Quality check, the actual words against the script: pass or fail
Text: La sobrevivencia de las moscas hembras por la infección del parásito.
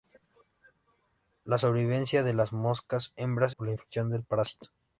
pass